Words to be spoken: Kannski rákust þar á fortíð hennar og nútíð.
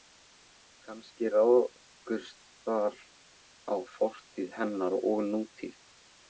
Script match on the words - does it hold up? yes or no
yes